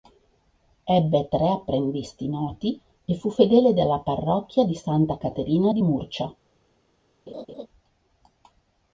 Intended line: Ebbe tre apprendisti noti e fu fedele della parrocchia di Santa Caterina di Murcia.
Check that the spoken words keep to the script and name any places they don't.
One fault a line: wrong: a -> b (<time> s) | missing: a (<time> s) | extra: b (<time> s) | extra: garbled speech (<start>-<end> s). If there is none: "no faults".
no faults